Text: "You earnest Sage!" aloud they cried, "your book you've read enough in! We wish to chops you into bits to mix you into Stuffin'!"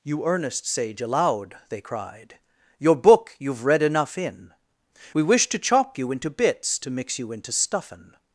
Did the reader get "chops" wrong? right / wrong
wrong